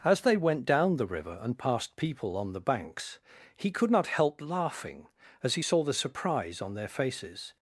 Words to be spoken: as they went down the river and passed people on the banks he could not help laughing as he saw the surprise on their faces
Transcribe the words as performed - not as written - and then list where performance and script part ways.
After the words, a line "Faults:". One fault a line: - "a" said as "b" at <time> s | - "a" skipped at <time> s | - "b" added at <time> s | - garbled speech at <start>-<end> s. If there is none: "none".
as they went down the river and passed people on the banks he could not help laughing as he saw the surprise on their faces
Faults:
none